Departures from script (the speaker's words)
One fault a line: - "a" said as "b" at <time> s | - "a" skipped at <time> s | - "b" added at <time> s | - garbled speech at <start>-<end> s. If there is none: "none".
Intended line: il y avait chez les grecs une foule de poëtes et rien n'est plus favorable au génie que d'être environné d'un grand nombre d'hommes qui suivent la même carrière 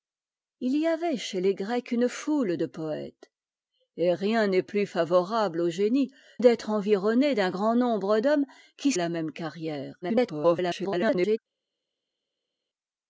- "que" skipped at 6.1 s
- "suivent" skipped at 8.9 s
- garbled speech at 10.0-11.4 s